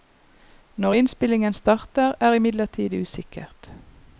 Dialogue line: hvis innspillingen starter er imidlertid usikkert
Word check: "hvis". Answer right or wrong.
wrong